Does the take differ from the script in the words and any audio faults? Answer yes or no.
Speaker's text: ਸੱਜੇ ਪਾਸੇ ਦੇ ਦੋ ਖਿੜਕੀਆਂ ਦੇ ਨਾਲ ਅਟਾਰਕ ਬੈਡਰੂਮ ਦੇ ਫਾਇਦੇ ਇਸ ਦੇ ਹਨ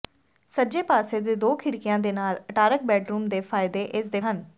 no